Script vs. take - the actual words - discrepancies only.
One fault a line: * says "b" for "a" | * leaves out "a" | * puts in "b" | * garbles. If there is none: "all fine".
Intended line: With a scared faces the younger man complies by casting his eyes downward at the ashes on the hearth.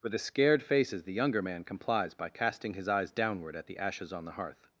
all fine